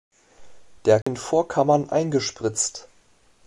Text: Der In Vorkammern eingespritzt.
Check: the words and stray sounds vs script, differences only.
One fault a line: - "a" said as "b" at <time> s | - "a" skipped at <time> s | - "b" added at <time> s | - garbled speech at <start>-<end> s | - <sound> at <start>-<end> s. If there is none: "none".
- dropout at 1.0-1.1 s